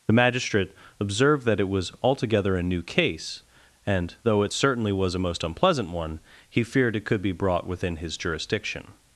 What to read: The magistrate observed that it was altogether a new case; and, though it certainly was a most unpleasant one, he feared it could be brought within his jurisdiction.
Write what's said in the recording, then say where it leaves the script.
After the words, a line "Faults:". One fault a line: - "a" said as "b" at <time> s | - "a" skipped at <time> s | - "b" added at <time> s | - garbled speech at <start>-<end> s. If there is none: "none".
The magistrate observed that it was altogether a new case; and, though it certainly was a most unpleasant one, he feared it could be brought within his jurisdiction.
Faults:
none